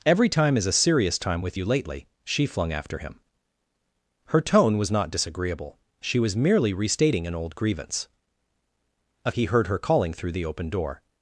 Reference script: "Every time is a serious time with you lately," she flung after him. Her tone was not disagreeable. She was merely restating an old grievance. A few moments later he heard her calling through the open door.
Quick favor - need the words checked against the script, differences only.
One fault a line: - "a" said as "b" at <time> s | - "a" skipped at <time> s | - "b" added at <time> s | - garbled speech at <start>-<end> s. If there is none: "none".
- "few moments later" skipped at 9.3 s